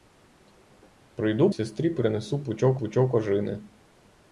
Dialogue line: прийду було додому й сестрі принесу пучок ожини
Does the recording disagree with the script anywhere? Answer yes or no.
yes